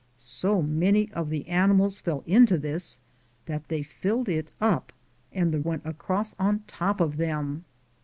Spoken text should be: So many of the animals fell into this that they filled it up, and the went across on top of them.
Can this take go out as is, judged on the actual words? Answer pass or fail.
pass